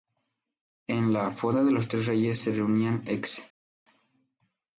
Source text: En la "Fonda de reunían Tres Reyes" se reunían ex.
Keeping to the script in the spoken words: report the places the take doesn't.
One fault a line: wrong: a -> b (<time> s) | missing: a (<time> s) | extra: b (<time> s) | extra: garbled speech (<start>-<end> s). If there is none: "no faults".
wrong: reunían -> los (1.7 s)